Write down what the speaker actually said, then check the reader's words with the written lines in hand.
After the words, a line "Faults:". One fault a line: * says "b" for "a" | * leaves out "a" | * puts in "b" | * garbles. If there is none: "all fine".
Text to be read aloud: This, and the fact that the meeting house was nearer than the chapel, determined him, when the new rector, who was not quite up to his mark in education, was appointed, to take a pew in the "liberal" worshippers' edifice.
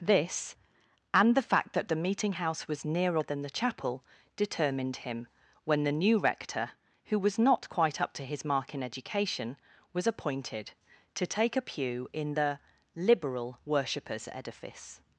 This, and the fact that the meeting house was nearer than the chapel, determined him, when the new rector, who was not quite up to his mark in education, was appointed, to take a pew in the "liberal" worshippers' edifice.
Faults:
all fine